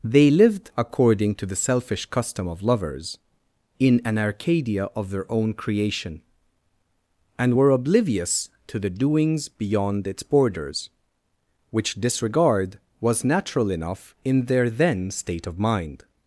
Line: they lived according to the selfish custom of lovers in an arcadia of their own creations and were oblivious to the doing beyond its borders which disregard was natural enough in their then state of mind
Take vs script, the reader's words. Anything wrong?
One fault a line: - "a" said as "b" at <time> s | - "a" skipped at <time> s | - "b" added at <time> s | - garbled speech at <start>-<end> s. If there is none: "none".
- "creations" said as "creation" at 5.5 s
- "doing" said as "doings" at 8.9 s